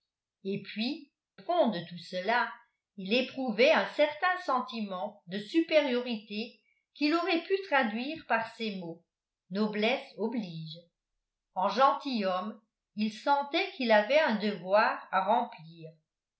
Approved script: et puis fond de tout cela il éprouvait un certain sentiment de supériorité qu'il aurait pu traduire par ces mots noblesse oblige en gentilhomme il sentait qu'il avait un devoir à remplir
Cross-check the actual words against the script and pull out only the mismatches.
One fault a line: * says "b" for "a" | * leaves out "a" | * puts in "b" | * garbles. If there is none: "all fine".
all fine